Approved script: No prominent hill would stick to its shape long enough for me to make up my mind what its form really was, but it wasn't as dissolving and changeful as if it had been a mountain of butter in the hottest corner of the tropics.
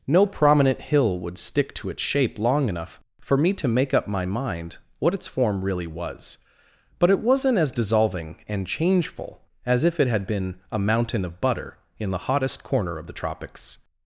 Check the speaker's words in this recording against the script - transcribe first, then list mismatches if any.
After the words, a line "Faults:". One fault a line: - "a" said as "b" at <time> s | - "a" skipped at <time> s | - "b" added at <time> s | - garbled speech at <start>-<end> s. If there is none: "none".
No prominent hill would stick to its shape long enough for me to make up my mind what its form really was, but it wasn't as dissolving and changeful as if it had been a mountain of butter in the hottest corner of the tropics.
Faults:
none